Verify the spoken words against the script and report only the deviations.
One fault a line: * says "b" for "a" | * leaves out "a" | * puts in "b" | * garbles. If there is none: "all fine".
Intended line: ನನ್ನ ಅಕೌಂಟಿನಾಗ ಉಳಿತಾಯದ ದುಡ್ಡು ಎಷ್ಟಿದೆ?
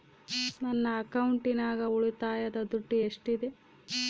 all fine